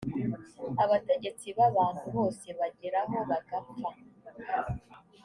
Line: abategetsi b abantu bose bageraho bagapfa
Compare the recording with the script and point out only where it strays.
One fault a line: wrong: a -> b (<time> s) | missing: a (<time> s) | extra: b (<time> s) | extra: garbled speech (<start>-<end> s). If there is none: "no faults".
no faults